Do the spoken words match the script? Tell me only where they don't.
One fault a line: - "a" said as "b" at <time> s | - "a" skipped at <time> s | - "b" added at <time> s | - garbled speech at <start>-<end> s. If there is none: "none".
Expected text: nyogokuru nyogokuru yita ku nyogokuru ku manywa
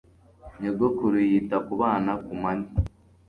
- "nyogokuru" skipped at 1.2 s
- "nyogokuru" said as "bana" at 1.8 s